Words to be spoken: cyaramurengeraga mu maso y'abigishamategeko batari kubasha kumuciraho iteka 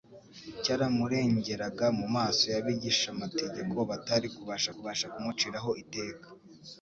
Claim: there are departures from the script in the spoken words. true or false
true